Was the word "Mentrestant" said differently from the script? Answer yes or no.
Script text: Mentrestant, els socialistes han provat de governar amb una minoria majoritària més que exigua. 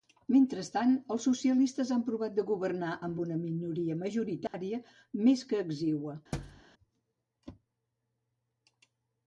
no